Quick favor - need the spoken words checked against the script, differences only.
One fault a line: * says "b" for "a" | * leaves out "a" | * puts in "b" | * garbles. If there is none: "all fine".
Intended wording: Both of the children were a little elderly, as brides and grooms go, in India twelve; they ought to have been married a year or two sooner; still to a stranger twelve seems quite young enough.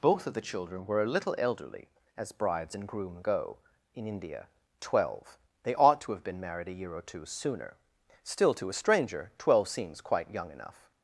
* says "groom" for "grooms"